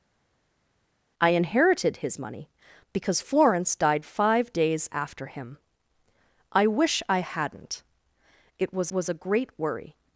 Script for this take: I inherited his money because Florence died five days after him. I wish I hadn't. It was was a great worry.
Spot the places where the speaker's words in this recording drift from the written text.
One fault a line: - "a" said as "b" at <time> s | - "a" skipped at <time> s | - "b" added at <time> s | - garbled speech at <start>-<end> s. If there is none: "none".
none